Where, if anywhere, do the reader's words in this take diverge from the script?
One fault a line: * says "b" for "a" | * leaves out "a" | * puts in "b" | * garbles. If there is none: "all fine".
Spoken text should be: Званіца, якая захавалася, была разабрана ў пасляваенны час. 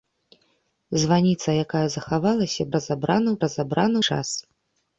* leaves out "была"
* says "разабрана" for "пасляваенны"